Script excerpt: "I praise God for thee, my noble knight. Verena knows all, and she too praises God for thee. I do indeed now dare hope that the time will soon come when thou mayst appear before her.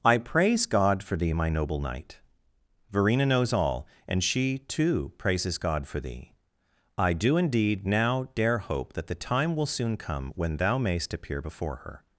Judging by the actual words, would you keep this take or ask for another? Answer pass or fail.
pass